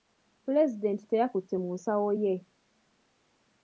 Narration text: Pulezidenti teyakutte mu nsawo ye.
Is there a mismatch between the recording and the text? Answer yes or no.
no